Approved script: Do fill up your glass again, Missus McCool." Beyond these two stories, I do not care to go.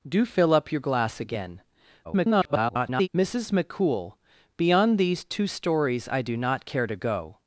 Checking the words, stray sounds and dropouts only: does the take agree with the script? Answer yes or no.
no